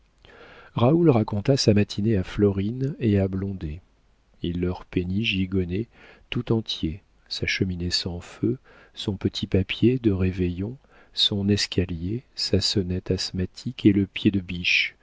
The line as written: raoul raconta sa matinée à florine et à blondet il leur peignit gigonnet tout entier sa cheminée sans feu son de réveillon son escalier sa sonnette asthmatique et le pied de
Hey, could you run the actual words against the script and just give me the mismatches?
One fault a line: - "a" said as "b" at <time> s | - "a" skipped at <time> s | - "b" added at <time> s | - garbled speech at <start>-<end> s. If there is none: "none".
- "petit papier" added at 9.2 s